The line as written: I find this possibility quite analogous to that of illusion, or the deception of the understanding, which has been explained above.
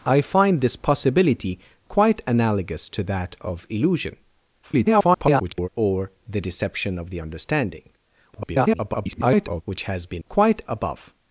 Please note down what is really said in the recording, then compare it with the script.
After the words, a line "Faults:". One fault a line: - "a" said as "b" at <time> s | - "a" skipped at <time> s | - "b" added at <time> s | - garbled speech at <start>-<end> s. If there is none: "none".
I find this possibility quite analogous to that of illusion, [garbled] or the deception of the understanding, [garbled] which has been quite above.
Faults:
- garbled speech at 4.6-5.7 s
- garbled speech at 8.3-9.6 s
- "explained" said as "quite" at 10.3 s